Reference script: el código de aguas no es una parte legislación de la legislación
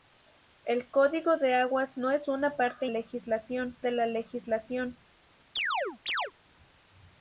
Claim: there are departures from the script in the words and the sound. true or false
true